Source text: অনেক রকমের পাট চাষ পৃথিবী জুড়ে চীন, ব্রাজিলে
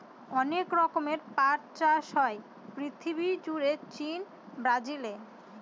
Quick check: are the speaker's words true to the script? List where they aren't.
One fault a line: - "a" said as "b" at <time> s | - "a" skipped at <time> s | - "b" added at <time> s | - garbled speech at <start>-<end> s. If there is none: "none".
- "হয়" added at 2.2 s